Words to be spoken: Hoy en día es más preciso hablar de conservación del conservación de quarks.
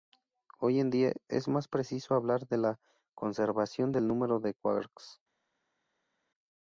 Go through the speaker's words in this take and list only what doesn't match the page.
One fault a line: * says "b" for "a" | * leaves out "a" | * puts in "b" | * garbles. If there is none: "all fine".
* puts in "la"
* says "número" for "conservación"